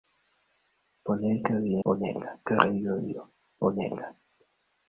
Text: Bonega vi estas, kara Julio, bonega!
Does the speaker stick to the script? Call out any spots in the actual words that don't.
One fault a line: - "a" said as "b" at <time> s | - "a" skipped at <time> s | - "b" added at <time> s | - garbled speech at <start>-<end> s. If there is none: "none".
- "estas" said as "bonega" at 1.9 s